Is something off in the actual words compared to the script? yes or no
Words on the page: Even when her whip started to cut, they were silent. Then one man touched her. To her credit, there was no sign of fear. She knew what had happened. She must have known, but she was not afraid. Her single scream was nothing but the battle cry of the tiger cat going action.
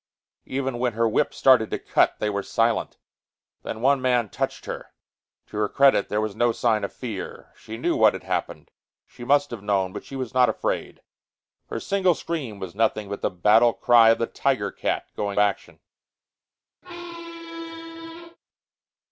no